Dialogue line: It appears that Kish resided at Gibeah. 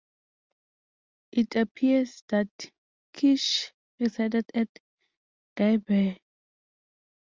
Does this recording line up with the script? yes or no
yes